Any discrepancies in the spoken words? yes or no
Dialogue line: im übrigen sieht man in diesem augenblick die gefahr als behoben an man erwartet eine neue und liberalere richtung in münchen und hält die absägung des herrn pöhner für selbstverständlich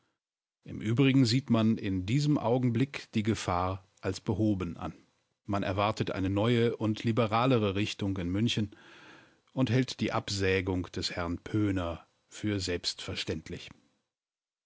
no